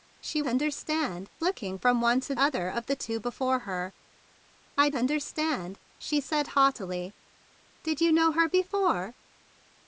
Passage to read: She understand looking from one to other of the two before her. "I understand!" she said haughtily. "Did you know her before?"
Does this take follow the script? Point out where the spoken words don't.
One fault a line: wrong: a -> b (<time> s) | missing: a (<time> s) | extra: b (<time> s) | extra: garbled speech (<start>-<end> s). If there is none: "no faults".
no faults